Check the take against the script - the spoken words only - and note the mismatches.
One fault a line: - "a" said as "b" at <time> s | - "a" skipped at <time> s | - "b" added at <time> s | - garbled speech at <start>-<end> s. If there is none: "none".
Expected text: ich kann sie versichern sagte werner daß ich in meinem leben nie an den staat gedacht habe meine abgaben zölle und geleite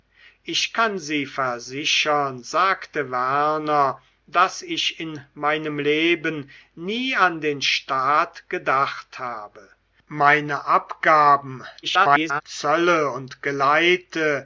- garbled speech at 11.8-12.4 s